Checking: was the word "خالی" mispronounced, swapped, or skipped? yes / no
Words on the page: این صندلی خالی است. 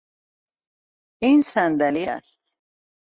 yes